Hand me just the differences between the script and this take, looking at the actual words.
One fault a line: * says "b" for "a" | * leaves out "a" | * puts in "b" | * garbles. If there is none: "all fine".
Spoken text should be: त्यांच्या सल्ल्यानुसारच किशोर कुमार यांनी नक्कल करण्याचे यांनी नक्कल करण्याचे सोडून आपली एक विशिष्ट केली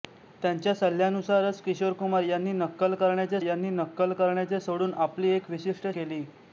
all fine